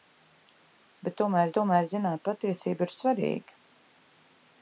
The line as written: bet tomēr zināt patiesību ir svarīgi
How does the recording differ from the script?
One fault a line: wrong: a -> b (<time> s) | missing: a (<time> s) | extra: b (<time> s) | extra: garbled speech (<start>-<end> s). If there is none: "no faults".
extra: tomēr (1.6 s)